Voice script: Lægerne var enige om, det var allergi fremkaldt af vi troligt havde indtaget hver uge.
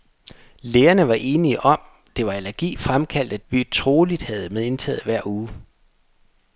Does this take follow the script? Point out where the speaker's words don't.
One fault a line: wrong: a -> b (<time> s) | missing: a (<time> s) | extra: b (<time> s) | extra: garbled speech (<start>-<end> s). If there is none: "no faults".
no faults